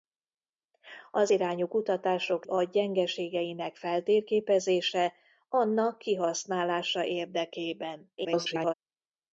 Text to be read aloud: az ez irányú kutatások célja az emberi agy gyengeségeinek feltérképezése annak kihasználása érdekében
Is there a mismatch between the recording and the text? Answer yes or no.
yes